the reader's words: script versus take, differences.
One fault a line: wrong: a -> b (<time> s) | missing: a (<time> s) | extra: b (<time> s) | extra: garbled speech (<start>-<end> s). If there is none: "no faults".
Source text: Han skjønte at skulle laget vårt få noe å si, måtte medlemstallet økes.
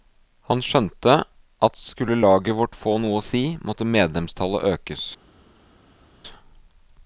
no faults